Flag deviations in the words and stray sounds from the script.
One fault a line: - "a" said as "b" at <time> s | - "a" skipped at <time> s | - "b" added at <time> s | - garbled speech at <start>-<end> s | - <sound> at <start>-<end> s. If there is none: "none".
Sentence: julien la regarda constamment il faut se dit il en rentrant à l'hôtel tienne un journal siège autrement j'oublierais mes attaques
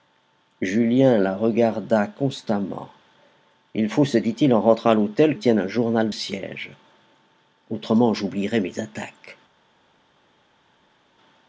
none